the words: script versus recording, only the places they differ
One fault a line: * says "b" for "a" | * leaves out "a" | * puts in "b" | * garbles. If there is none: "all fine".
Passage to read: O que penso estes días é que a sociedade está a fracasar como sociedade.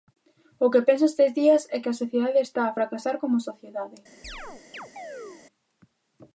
all fine